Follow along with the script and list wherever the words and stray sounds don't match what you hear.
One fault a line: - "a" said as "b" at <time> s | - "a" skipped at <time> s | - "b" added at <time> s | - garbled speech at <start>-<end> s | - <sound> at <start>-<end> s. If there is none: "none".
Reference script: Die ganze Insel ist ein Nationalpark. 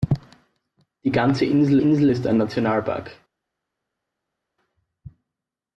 - "Insel" added at 1.8 s